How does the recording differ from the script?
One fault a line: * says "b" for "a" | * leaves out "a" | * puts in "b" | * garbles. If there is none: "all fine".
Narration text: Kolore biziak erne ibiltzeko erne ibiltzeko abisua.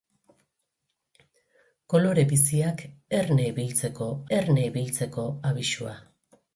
all fine